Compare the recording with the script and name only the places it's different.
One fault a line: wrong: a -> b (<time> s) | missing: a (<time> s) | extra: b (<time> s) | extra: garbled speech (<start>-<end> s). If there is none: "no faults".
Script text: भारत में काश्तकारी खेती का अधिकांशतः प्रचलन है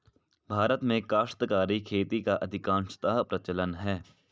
no faults